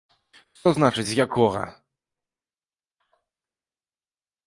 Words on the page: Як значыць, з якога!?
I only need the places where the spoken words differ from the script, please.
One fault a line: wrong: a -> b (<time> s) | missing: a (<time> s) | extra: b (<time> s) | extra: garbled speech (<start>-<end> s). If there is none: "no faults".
wrong: Як -> Што (0.6 s)